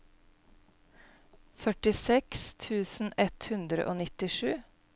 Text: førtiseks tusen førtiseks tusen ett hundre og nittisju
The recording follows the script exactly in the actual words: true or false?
false